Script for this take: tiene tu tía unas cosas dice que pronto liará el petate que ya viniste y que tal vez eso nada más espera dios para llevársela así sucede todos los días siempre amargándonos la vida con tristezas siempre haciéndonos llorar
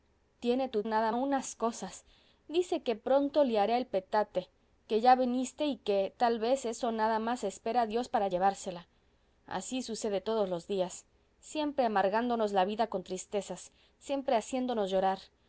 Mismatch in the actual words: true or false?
true